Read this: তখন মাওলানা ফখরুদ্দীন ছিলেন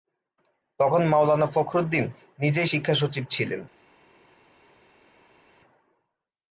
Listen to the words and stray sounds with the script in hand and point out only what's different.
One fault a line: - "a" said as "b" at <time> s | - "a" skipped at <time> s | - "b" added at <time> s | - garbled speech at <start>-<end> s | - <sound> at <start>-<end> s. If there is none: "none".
- "নিজেই শিক্ষা সচিব" added at 2.4 s